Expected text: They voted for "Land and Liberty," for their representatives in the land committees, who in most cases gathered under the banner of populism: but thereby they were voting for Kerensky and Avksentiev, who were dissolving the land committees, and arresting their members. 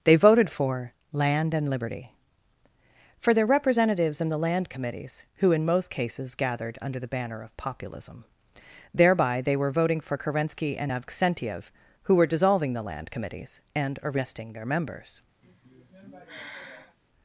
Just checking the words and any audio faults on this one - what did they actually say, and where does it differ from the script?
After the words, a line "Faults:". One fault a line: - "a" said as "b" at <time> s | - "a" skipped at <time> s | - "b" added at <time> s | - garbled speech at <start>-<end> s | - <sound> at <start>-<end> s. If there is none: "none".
They voted for "Land and Liberty," for their representatives in the land committees, who in most cases gathered under the banner of populism: thereby they were voting for Kerensky and Avksentiev, who were dissolving the land committees, and arresting their members.
Faults:
- "but" skipped at 8.2 s
- sigh at 15.4-17.0 s